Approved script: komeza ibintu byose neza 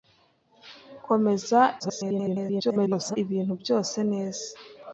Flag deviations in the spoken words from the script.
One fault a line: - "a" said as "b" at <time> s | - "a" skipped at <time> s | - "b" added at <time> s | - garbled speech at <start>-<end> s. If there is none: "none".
- garbled speech at 1.8-3.2 s